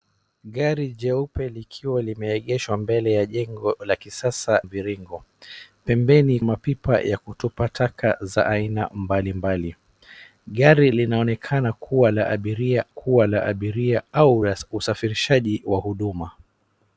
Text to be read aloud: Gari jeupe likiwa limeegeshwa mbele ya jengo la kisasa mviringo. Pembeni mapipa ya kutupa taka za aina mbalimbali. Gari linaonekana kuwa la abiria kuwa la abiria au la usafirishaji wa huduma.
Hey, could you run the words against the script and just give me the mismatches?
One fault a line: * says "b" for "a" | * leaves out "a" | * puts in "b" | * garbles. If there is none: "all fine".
all fine